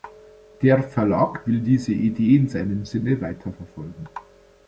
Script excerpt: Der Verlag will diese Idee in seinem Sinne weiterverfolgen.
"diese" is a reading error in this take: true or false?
false